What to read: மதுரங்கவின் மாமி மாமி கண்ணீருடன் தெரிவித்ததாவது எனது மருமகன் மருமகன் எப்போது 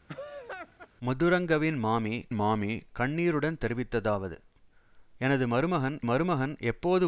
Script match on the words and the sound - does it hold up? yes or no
no